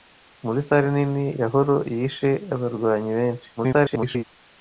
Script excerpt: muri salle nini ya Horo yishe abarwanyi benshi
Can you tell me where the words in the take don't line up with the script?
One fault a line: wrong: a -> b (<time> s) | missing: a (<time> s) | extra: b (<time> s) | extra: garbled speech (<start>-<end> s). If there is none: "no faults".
extra: garbled speech (3.6-4.2 s)